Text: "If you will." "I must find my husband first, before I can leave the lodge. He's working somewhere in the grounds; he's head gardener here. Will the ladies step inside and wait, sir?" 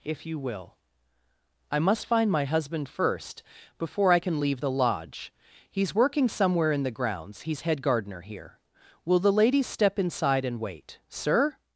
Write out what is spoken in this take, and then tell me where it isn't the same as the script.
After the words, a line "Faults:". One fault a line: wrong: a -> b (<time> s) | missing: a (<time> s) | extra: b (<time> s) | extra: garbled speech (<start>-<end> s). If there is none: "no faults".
"If you will." "I must find my husband first, before I can leave the lodge. He's working somewhere in the grounds; he's head gardener here. Will the ladies step inside and wait, sir?"
Faults:
no faults